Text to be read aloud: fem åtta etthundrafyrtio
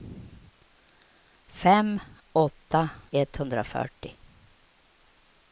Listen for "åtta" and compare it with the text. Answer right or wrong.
right